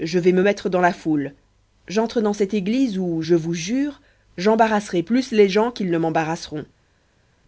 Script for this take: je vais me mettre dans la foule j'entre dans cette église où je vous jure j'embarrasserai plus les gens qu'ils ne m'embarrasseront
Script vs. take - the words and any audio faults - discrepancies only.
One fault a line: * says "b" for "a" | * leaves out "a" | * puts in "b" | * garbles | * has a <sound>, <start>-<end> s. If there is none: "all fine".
all fine